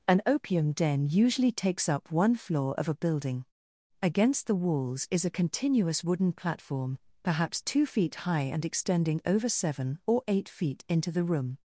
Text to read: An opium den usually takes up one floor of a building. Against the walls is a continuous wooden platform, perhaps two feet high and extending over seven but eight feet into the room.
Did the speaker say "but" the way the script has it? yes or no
no